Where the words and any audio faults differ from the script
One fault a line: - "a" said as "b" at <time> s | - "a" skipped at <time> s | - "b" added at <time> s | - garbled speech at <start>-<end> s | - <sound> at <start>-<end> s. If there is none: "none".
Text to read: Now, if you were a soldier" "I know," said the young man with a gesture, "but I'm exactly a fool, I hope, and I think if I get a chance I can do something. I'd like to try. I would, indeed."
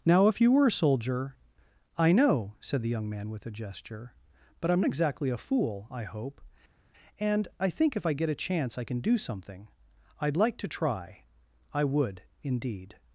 none